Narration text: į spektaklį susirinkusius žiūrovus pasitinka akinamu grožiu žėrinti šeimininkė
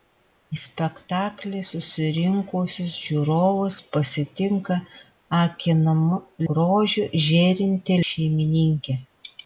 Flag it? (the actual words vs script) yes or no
no